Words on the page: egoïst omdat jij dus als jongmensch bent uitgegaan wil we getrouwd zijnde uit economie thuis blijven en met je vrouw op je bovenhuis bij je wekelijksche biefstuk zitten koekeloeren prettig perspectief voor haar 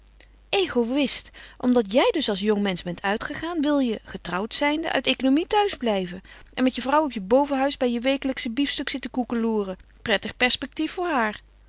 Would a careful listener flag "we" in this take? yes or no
yes